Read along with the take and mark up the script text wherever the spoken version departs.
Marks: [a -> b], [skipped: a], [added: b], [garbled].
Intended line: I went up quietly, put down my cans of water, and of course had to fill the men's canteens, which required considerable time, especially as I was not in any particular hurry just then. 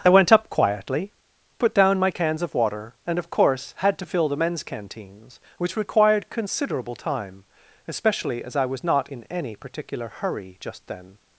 I went up quietly, put down my cans of water, and of course had to fill the men's canteens, which required considerable time, especially as I was not in any particular hurry just then.